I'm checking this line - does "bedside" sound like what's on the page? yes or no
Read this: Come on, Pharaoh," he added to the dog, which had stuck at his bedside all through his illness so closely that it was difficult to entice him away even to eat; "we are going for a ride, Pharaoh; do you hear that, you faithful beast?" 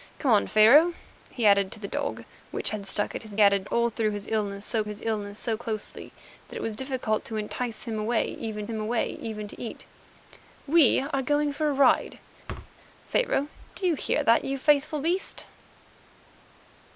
no